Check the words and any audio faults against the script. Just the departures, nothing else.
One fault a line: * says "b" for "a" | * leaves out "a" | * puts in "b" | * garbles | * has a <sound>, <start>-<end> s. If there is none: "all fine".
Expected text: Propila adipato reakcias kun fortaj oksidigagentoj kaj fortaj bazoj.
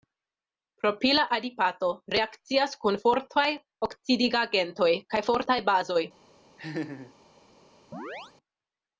* has a laugh, 6.6-7.1 s
* has a chirp, 7.9-8.3 s